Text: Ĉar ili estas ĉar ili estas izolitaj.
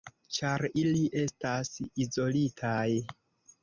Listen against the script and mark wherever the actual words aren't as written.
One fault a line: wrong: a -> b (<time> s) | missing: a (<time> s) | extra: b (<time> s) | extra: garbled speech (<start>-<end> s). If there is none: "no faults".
missing: ĉar ili estas (1.7 s)